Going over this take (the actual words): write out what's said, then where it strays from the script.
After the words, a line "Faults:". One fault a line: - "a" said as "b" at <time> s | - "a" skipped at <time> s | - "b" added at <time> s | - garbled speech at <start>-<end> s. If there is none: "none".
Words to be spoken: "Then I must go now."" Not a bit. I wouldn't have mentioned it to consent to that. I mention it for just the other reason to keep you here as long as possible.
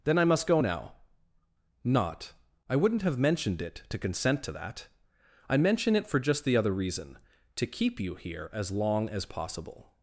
"Then I must go now."" Not. I wouldn't have mentioned it to consent to that. I mention it for just the other reason to keep you here as long as possible.
Faults:
- "a bit" skipped at 2.3 s